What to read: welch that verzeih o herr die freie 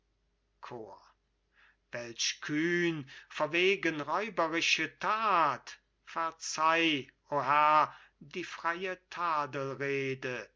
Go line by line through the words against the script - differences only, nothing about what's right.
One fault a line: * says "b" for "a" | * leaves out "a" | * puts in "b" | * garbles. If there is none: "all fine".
* puts in "kühn verwegen räuberische"